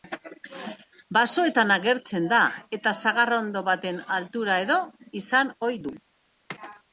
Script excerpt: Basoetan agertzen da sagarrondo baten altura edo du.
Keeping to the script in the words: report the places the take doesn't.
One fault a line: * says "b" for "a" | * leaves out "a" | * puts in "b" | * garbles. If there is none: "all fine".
* puts in "eta"
* puts in "izan ohi"